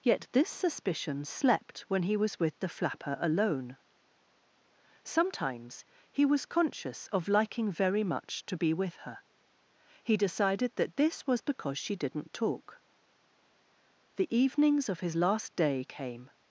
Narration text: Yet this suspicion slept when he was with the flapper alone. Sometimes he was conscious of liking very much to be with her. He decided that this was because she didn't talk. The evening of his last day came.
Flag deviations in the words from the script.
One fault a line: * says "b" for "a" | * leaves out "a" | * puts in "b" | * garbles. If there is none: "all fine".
* says "evenings" for "evening"